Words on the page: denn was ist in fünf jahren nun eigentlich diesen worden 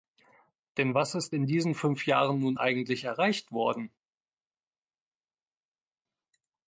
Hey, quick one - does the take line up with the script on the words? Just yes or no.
no